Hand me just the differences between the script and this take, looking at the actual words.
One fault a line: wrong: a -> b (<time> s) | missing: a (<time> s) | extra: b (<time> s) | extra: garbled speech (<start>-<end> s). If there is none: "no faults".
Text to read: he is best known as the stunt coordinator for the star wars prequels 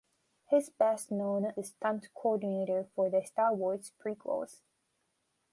missing: as (1.5 s)